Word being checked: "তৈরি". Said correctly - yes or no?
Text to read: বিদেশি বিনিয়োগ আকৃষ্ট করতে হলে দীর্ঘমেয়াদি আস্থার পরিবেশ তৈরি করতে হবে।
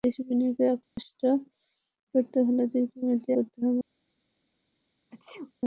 no